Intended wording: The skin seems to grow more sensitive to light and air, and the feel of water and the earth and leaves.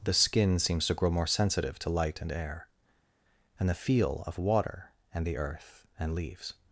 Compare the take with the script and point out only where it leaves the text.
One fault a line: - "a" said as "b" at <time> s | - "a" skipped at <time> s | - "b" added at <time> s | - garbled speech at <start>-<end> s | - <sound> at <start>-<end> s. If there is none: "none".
none